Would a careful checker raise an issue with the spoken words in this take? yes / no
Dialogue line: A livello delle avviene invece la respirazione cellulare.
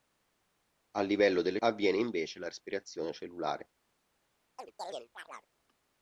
no